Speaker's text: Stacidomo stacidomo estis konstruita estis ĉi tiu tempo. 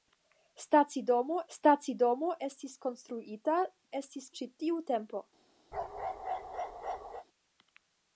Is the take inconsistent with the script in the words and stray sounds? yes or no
yes